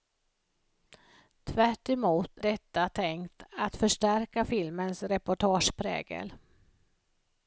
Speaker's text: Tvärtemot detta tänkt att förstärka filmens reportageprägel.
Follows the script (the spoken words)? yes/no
yes